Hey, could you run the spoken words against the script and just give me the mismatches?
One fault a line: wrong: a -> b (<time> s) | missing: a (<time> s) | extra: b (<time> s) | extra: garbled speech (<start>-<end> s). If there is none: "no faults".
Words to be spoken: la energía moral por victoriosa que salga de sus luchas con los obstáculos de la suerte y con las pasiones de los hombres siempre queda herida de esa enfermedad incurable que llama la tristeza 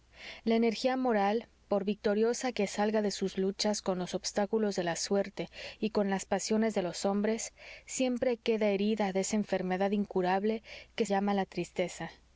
no faults